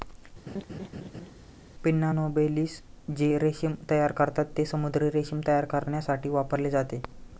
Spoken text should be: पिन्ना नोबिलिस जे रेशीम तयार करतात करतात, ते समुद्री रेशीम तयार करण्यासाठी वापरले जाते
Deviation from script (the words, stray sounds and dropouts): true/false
true